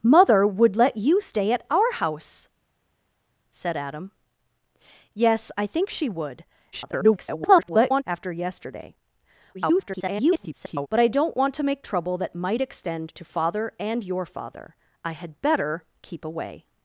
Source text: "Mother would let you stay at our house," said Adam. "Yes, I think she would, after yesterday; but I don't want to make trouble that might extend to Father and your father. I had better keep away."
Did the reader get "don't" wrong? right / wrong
right